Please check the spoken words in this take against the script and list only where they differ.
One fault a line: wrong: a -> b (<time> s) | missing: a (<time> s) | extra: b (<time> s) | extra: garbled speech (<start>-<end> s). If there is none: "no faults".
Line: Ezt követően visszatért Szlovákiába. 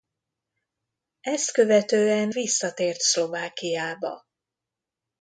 no faults